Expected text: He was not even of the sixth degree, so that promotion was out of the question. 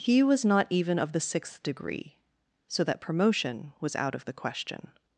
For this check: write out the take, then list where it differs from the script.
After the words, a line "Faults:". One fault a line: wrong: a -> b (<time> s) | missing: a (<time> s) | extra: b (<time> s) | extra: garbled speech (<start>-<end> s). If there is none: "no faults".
He was not even of the sixth degree, so that promotion was out of the question.
Faults:
no faults